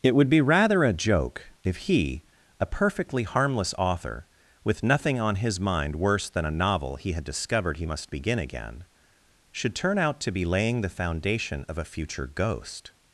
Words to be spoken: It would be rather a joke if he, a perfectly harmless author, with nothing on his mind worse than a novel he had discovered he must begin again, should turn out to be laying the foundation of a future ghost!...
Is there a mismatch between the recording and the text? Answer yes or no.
no